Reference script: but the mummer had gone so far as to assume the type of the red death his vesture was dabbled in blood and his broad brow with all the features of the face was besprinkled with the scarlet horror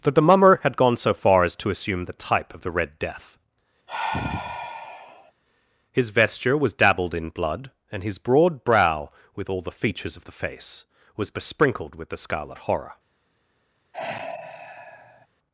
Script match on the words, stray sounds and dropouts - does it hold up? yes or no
no